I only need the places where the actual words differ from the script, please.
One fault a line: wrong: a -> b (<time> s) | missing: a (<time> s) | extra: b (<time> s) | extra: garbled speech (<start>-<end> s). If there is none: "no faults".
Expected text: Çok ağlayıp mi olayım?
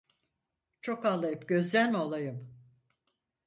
extra: gözden (1.5 s)